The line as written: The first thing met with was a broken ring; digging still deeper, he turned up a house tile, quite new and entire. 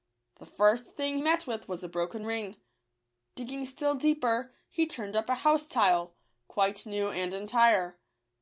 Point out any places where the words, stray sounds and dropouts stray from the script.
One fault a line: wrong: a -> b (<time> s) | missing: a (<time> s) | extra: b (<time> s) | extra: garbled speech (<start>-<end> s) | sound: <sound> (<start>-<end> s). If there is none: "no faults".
no faults